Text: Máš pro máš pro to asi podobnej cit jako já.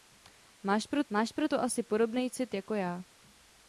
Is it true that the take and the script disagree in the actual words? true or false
false